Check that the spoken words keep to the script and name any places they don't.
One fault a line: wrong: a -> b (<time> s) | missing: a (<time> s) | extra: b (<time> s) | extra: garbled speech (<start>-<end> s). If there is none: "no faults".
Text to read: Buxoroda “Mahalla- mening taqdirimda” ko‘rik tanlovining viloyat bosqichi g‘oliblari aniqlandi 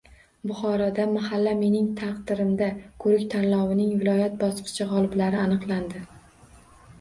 no faults